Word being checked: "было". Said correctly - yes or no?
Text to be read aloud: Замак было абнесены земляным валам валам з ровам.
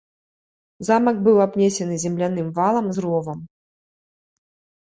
no